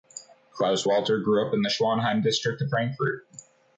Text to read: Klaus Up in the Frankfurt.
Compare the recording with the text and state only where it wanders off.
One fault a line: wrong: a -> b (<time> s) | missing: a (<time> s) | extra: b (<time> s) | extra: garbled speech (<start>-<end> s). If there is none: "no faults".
extra: Walter grew (0.9 s)
extra: Schwanheim district of (1.7 s)